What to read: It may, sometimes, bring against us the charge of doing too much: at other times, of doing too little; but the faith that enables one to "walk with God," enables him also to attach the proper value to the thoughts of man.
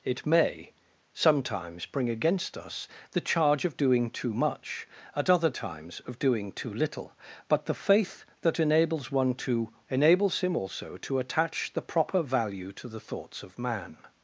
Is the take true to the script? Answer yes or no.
no